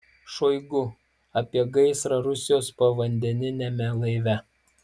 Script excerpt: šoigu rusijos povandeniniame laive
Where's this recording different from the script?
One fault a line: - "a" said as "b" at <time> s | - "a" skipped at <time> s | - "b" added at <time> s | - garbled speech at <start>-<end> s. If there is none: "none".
- "apie gaisrą" added at 1.4 s